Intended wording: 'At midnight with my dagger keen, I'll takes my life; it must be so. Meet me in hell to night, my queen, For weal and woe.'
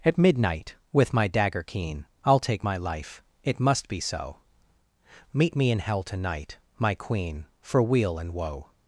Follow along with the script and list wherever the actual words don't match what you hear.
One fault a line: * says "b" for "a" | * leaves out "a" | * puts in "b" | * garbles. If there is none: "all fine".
* says "take" for "takes"